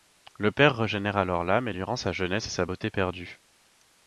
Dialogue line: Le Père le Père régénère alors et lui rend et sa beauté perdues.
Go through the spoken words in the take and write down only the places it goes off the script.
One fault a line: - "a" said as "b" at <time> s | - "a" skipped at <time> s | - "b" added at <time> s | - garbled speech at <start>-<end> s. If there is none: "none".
- "le Père" skipped at 0.8 s
- "l'âme" added at 1.4 s
- "sa jeunesse" added at 2.0 s